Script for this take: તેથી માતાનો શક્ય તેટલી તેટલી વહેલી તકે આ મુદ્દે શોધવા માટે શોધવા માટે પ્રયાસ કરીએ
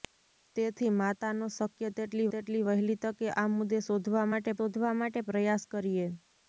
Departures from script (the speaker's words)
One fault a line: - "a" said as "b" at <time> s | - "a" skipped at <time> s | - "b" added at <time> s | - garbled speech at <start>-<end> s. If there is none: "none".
none